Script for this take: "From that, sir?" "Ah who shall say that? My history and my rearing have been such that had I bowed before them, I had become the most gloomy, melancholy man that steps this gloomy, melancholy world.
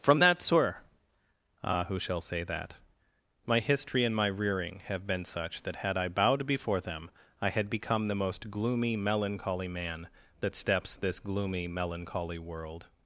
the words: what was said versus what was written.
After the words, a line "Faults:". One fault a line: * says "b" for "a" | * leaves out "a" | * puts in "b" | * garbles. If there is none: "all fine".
"From that, sir?" "Ah who shall say that? My history and my rearing have been such that had I bowed before them, I had become the most gloomy, melancholy man that steps this gloomy, melancholy world.
Faults:
all fine